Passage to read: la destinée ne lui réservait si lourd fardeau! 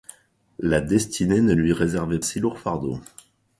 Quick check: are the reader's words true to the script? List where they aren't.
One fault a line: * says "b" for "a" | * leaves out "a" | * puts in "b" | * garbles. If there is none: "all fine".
all fine